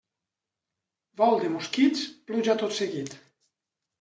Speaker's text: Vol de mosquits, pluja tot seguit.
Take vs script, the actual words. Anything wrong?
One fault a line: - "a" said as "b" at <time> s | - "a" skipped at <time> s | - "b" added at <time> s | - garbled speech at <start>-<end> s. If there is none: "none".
none